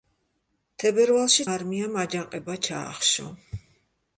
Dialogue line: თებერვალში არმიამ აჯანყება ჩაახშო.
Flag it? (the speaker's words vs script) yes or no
no